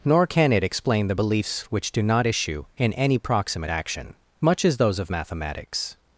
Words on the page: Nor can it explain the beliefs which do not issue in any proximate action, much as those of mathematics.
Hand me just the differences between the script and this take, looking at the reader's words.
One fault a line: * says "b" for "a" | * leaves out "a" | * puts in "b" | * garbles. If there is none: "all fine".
all fine